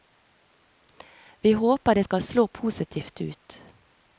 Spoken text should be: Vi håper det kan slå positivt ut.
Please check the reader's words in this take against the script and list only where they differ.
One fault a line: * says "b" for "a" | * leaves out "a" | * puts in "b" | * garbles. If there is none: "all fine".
* says "skal" for "kan"